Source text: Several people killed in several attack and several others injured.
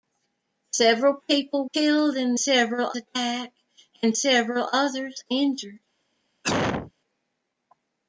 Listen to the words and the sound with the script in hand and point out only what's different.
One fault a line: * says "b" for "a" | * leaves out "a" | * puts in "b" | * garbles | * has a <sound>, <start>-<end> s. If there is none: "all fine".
* has a cough, 6.4-6.9 s